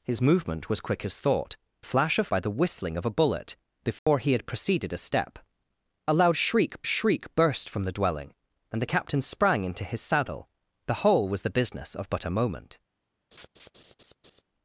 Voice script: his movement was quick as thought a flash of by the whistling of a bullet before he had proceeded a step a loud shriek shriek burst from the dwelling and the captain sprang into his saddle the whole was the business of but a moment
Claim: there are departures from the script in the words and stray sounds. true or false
true